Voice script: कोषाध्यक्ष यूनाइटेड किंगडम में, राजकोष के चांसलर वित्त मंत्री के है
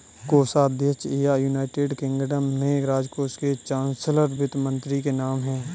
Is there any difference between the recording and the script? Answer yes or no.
yes